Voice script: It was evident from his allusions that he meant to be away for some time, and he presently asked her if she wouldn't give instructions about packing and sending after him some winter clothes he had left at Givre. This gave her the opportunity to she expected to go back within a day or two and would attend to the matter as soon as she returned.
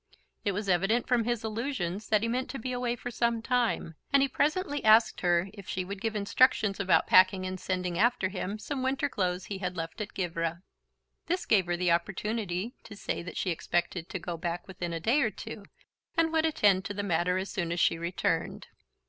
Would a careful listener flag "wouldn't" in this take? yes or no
yes